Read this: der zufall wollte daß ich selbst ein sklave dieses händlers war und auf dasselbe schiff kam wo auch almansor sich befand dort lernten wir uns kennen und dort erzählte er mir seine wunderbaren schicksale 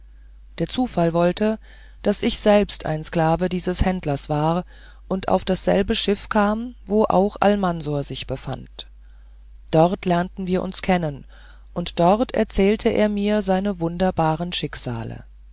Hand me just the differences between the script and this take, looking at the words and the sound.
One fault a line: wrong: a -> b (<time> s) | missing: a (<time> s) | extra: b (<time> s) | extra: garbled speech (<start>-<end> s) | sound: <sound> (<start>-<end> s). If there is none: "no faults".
no faults